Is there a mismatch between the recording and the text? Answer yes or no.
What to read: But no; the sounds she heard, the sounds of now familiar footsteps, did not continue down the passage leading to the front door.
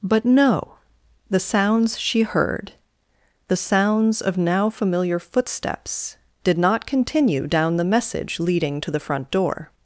yes